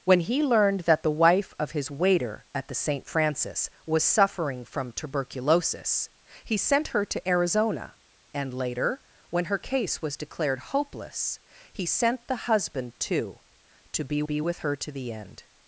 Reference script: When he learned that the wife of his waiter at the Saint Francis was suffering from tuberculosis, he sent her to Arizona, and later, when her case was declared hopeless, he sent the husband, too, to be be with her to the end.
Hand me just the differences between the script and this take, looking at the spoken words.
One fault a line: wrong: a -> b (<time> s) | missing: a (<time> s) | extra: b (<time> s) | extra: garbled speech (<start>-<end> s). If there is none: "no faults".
no faults